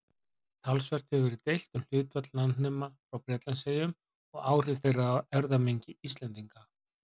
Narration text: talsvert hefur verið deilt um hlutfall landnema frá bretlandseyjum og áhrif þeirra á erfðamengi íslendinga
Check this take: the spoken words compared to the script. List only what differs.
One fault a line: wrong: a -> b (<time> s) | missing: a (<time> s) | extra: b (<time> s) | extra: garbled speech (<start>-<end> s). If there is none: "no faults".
no faults